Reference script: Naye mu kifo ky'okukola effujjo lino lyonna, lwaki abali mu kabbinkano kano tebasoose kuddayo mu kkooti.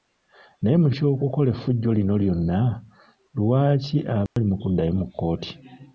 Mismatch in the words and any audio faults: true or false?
true